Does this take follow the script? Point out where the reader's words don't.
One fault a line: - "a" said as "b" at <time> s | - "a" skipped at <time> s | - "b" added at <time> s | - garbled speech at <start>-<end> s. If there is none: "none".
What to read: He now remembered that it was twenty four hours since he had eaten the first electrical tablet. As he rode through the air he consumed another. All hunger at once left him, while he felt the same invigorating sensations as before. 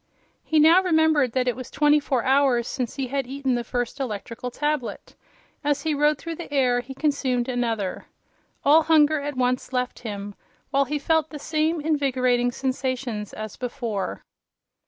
none